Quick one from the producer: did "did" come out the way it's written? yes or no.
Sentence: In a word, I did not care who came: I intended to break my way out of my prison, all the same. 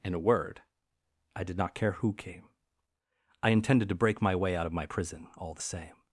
yes